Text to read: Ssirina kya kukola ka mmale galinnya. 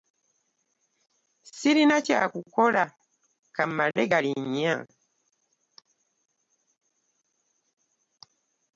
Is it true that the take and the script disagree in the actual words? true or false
false